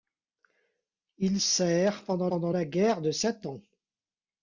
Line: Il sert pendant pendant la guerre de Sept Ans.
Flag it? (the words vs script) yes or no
no